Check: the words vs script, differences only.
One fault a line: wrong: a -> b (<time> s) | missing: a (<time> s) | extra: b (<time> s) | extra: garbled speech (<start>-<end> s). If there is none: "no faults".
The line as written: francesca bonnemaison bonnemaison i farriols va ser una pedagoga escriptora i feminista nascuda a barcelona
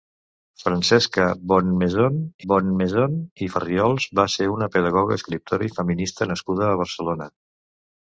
no faults